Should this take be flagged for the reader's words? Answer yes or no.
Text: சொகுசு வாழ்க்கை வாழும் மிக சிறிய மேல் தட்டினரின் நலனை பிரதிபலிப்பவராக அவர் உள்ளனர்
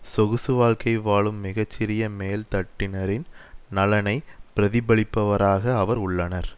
no